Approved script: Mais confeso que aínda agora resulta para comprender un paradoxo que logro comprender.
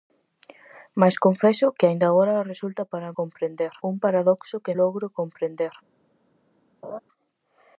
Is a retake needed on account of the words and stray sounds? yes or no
yes